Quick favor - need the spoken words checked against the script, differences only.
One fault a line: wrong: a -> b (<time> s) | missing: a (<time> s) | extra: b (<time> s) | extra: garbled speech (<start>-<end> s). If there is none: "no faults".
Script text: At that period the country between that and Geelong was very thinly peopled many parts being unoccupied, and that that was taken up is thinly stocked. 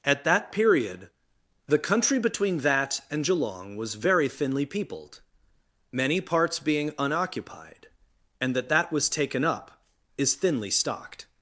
no faults